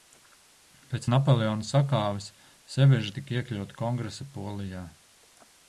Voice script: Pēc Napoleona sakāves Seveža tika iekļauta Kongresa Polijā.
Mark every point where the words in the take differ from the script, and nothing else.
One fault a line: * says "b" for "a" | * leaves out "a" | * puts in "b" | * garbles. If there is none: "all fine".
all fine